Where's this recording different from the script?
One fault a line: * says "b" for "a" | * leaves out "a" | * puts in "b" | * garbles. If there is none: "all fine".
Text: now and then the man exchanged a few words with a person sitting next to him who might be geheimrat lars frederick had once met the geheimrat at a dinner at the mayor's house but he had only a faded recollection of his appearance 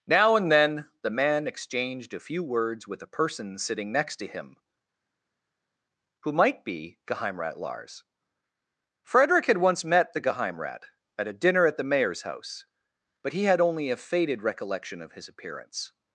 all fine